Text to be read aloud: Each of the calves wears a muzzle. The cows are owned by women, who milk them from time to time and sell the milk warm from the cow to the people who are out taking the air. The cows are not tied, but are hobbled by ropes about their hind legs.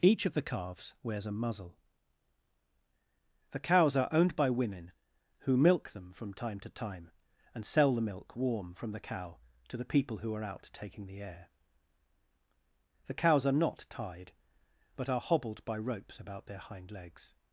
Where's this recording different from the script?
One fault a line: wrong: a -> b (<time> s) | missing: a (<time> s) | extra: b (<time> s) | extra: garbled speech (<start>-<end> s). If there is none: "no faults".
no faults